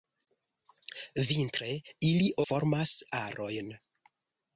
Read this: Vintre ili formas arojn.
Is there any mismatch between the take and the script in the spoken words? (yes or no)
no